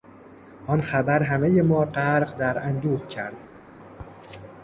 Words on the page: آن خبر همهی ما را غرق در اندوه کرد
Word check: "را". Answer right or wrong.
wrong